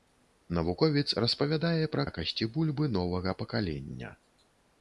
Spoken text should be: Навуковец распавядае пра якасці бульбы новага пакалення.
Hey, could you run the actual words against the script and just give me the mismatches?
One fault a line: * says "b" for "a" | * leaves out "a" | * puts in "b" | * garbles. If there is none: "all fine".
all fine